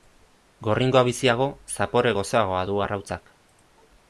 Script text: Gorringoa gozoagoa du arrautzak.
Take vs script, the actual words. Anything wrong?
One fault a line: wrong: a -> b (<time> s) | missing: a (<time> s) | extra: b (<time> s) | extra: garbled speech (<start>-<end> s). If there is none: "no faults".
extra: biziago zapore (1.1 s)